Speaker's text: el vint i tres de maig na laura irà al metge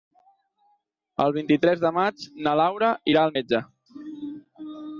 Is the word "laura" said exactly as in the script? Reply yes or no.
yes